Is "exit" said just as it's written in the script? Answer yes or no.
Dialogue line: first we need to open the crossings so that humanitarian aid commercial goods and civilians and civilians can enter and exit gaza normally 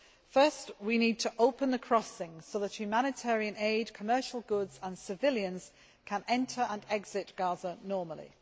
yes